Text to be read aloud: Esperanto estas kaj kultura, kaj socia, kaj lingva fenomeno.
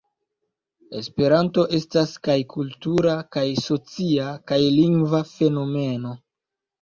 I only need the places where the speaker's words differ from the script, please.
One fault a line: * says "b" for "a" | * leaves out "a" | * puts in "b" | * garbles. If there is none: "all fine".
all fine